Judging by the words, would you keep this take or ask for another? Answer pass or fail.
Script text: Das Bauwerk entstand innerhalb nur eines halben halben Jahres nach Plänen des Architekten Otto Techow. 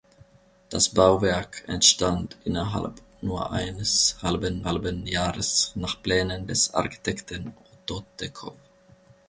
pass